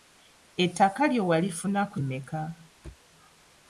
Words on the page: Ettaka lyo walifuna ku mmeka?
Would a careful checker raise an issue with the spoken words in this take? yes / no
no